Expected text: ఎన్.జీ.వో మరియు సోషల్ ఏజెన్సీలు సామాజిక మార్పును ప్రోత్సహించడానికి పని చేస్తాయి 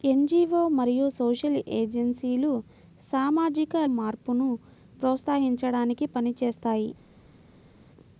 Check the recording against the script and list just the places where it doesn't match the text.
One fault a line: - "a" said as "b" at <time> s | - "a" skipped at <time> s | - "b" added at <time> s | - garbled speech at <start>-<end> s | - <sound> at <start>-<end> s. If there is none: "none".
none